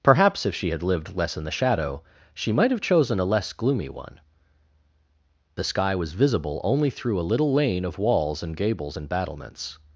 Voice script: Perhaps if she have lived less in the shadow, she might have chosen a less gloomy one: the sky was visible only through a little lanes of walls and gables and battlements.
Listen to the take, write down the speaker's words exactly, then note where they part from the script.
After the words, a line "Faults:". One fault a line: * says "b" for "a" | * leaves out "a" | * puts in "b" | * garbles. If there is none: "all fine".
Perhaps if she had lived less in the shadow, she might have chosen a less gloomy one: the sky was visible only through a little lane of walls and gables and battlements.
Faults:
* says "had" for "have"
* says "lane" for "lanes"